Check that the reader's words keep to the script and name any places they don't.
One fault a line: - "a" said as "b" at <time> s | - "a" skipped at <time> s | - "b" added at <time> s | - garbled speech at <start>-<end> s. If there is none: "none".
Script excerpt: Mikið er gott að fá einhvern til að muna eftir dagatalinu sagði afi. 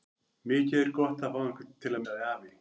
- "muna eftir dagatalinu" skipped at 2.0 s